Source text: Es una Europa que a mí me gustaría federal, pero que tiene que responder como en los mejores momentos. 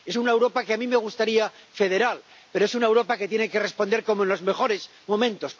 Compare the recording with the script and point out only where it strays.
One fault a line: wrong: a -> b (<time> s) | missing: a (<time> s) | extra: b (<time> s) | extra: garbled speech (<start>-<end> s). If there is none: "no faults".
extra: es una Europa (2.6 s)